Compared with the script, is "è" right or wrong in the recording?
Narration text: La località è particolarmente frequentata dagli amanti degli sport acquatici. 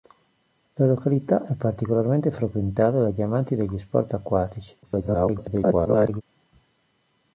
right